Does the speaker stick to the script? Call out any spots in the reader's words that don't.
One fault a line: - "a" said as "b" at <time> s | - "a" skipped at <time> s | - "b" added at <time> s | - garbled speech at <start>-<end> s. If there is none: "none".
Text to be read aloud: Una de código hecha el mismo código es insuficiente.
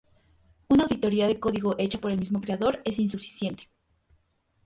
- "auditoría" added at 0.8 s
- "por" added at 2.0 s
- "código" said as "creador" at 2.4 s